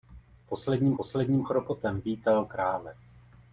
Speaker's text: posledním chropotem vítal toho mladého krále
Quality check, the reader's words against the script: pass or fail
fail